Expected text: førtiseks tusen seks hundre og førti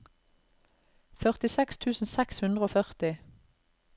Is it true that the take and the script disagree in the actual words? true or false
false